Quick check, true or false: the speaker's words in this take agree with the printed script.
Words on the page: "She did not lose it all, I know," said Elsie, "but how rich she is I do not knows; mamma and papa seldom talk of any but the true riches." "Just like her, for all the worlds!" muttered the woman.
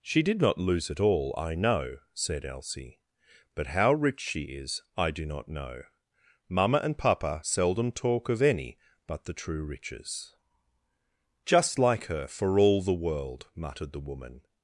false